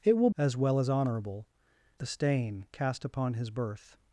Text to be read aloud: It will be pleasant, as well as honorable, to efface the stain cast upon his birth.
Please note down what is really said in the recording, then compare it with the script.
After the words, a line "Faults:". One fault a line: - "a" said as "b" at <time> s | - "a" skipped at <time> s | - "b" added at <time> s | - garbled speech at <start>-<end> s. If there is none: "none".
It will as well as honorable, the stain cast upon his birth.
Faults:
- "be pleasant" skipped at 0.3 s
- "to efface" skipped at 1.5 s